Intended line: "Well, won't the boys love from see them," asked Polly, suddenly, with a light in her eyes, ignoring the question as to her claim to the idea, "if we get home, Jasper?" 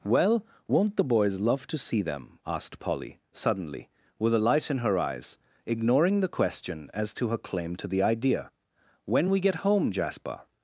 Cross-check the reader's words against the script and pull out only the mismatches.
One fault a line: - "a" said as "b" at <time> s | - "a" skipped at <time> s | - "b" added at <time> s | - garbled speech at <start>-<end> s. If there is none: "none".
- "from" said as "to" at 1.7 s
- "if" said as "when" at 9.1 s